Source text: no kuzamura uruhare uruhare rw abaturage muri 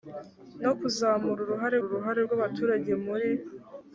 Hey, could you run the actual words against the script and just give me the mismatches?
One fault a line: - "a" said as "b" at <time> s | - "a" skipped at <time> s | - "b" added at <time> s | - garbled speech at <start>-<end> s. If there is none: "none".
none